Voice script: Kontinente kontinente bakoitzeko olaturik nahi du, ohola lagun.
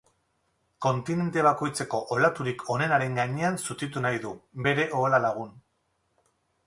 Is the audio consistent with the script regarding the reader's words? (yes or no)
no